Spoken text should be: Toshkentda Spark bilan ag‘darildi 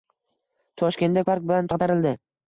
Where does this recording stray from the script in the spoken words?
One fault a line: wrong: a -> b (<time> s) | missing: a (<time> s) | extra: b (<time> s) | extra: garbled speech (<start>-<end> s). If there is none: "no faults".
no faults